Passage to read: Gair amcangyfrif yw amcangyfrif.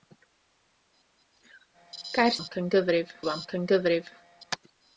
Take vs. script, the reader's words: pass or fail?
pass